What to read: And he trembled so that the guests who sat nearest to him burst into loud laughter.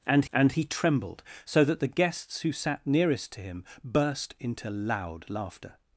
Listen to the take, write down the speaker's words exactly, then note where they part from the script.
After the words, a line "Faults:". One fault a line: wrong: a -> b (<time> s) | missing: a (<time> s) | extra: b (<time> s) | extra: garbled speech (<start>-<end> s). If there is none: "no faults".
And and he trembled so that the guests who sat nearest to him burst into loud laughter.
Faults:
extra: and (0.3 s)